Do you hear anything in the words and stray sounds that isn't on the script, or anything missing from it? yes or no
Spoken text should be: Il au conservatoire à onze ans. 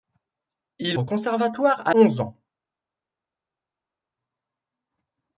no